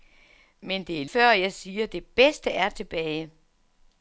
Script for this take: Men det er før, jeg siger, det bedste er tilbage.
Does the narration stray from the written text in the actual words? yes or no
no